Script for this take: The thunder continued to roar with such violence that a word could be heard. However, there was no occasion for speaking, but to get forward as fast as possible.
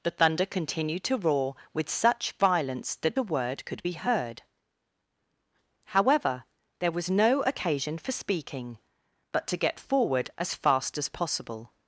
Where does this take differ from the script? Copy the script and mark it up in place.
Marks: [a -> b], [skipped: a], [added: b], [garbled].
The thunder continued to roar with such violence that a word could be heard. However, there was no occasion for speaking, but to get forward as fast as possible.